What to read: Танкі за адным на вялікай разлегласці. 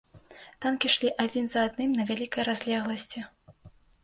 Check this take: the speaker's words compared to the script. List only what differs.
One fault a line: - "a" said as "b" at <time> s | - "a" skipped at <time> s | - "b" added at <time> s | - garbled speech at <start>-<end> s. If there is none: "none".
- "ішлі адзін" added at 0.9 s